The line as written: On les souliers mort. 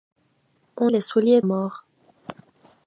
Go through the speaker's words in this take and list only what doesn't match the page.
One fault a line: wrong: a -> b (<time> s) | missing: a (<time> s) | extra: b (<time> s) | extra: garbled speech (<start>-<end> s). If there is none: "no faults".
no faults